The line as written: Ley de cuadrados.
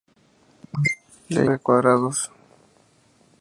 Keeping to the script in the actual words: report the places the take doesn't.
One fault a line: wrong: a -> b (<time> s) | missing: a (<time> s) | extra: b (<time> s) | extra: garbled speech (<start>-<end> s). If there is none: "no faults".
no faults